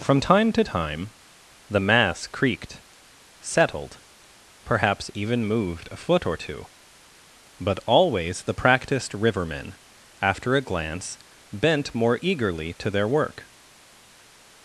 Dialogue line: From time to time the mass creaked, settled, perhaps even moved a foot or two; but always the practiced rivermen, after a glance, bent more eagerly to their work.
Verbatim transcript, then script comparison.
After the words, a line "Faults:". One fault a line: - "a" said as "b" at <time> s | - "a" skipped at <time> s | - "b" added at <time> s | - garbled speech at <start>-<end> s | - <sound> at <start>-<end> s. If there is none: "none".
From time to time the mass creaked, settled, perhaps even moved a foot or two; but always the practiced rivermen, after a glance, bent more eagerly to their work.
Faults:
none